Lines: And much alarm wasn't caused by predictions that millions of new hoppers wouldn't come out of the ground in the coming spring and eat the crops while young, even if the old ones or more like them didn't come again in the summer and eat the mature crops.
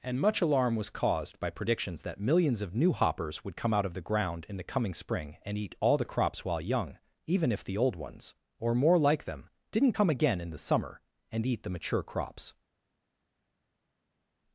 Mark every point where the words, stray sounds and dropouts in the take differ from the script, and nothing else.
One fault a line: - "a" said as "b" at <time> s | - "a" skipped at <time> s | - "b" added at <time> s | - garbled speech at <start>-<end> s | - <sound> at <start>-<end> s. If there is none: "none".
- "wasn't" said as "was" at 0.8 s
- "wouldn't" said as "would" at 3.4 s
- "all" added at 5.8 s